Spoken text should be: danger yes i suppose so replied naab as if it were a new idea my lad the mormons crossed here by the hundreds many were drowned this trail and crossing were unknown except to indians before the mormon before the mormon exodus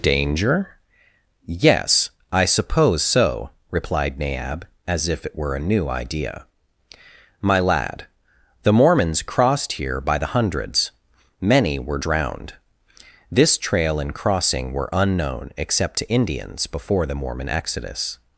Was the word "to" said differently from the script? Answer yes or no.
no